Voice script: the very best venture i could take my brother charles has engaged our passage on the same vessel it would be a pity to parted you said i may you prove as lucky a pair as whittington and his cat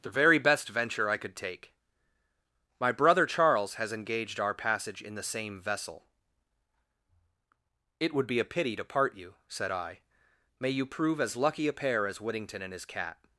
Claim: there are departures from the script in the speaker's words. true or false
true